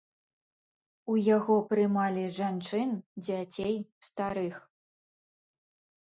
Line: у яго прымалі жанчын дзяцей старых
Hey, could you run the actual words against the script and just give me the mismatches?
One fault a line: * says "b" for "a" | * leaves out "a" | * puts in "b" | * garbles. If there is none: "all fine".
all fine